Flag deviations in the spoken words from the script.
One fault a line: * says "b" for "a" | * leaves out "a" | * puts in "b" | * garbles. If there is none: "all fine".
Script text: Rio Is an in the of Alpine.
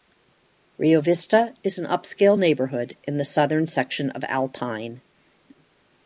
* puts in "Vista"
* puts in "upscale neighborhood"
* puts in "southern section"